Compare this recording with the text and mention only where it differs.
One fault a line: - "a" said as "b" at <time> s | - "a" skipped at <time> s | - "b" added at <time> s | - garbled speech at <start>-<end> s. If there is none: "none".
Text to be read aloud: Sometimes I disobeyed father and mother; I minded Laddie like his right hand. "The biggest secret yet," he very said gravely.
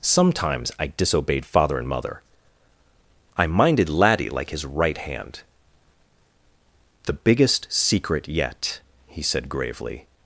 - "very" skipped at 9.2 s